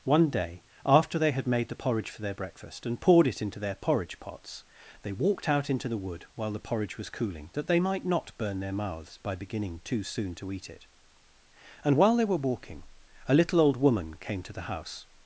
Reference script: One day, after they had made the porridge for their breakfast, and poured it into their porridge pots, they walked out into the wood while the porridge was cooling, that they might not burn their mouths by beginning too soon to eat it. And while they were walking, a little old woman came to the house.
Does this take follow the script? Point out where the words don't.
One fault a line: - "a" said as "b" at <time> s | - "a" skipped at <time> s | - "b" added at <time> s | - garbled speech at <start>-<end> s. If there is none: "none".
none